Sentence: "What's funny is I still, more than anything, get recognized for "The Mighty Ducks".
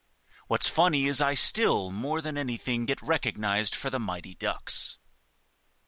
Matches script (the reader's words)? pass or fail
pass